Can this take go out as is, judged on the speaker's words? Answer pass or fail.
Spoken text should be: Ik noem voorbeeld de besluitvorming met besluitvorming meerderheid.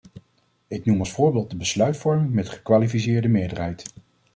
fail